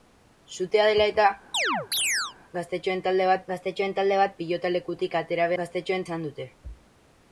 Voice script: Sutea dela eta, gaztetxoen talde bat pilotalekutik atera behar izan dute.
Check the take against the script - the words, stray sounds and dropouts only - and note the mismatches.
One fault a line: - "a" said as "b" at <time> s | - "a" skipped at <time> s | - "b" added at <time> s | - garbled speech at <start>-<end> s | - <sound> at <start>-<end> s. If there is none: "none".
- chirp at 1.5-2.4 s
- "gaztetxoen talde bat" added at 3.5 s
- "behar" said as "gaztetxoen" at 5.6 s